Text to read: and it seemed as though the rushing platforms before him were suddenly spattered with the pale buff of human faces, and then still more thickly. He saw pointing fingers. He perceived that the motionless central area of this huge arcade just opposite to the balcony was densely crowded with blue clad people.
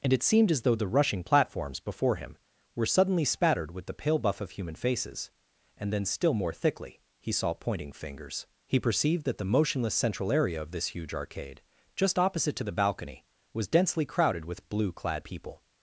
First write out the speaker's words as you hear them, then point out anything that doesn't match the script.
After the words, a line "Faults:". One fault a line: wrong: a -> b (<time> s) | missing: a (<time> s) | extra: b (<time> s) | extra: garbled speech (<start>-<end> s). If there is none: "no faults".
and it seemed as though the rushing platforms before him were suddenly spattered with the pale buff of human faces, and then still more thickly. He saw pointing fingers. He perceived that the motionless central area of this huge arcade just opposite to the balcony was densely crowded with blue clad people.
Faults:
no faults